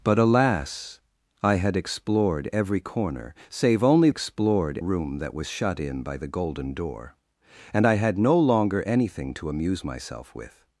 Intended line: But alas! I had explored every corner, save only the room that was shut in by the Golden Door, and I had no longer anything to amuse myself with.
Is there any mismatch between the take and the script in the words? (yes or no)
yes